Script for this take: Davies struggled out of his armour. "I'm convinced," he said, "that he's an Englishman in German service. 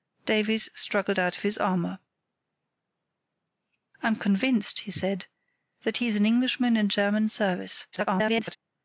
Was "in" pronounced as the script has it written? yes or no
yes